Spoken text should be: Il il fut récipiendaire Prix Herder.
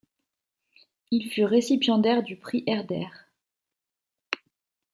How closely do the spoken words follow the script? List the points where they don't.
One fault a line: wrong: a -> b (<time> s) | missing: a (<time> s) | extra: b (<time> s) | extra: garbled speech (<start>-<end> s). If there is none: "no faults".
missing: il (1.3 s)
extra: du (2.2 s)